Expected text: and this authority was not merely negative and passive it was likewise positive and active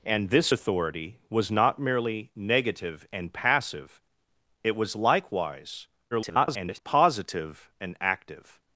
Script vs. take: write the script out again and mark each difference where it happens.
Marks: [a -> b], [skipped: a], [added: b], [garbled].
and this authority was not merely negative and passive it was likewise [garbled] positive and active